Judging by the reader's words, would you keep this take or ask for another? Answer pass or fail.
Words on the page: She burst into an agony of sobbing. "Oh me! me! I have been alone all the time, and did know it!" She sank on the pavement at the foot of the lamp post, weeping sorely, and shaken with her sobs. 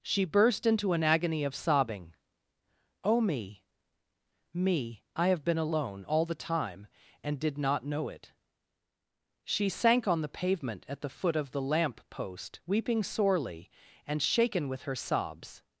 fail